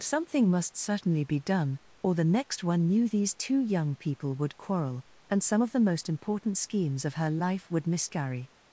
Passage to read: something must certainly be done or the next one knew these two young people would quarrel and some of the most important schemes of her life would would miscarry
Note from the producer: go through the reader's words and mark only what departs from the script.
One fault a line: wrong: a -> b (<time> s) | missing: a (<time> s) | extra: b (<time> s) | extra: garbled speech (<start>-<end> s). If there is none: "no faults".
missing: would (7.8 s)